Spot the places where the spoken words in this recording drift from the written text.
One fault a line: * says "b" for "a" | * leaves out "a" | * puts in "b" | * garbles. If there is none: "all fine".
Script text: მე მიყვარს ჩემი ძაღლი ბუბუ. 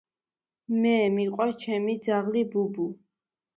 all fine